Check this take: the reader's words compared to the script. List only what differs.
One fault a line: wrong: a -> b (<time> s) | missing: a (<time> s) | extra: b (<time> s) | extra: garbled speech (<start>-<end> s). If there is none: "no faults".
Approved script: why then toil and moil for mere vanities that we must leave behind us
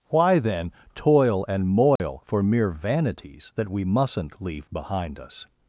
wrong: must -> mustn't (3.8 s)